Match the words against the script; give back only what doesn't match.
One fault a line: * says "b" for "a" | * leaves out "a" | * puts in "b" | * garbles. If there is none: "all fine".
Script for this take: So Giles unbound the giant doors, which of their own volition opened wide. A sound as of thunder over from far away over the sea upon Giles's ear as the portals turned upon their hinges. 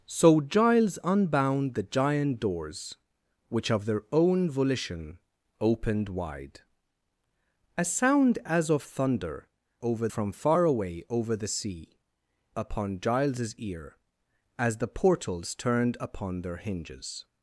all fine